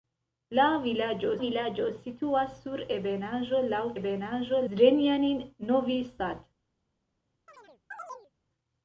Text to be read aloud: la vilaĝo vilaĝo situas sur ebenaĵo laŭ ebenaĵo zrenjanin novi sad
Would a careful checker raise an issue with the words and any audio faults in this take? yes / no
yes